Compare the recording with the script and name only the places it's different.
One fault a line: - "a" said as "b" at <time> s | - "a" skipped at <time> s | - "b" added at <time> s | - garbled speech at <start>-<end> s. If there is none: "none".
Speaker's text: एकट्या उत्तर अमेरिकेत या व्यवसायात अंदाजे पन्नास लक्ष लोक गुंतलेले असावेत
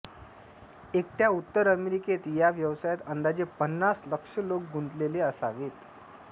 none